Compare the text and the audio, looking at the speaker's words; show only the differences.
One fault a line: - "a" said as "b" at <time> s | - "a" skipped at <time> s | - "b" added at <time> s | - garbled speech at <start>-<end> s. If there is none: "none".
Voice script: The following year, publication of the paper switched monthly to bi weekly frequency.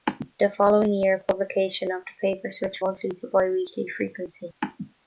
none